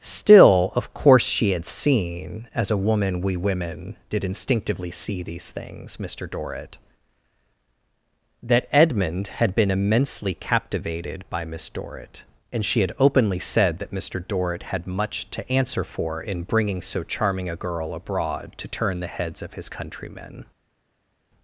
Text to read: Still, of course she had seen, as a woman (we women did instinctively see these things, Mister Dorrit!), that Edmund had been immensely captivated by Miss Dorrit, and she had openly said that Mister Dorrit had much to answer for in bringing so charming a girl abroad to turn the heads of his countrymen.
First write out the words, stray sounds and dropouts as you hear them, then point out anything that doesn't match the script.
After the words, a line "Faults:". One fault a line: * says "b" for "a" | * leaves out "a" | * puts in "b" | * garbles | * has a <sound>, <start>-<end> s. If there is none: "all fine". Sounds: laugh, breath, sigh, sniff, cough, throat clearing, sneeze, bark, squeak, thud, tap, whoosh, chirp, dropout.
Still, of course she had seen, as a woman (we women did instinctively see these things, Mister Dorrit!), that Edmund had been immensely captivated by Miss Dorrit, and she had openly said that Mister Dorrit had much to answer for in bringing so charming a girl abroad to turn the heads of his countrymen.
Faults:
all fine